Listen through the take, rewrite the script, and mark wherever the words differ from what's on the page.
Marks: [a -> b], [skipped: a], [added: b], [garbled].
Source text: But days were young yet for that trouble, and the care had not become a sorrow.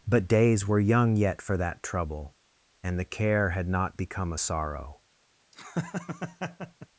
But days were young yet for that trouble, and the care had not become a sorrow.